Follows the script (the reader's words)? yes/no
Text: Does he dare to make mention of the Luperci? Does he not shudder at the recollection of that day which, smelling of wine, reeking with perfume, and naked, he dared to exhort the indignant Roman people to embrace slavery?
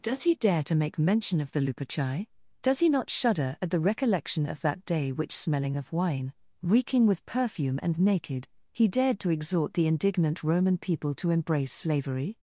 yes